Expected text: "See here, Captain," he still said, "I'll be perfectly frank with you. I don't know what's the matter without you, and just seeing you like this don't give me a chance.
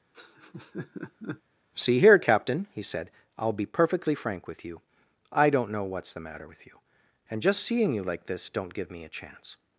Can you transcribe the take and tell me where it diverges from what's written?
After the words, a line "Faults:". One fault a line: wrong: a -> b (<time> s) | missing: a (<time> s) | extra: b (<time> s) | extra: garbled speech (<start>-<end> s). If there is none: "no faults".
"See here, Captain," he said, "I'll be perfectly frank with you. I don't know what's the matter with you, and just seeing you like this don't give me a chance.
Faults:
missing: still (2.8 s)
wrong: without -> with (6.4 s)